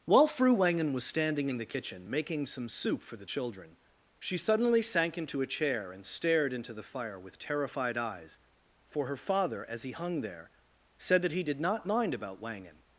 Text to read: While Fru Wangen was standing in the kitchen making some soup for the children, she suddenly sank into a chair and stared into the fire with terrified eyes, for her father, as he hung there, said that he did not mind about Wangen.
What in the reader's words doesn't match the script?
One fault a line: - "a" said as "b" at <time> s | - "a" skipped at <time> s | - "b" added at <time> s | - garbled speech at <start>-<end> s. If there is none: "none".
none